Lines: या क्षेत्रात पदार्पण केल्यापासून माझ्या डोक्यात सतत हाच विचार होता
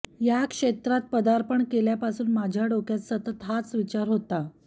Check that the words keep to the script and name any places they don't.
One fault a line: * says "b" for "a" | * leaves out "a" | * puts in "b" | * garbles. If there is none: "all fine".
all fine